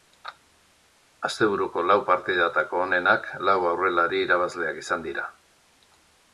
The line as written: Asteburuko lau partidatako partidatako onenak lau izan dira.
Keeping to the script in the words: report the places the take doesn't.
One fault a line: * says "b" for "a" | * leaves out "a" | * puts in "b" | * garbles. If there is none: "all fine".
* leaves out "partidatako"
* puts in "aurrelari irabazleak"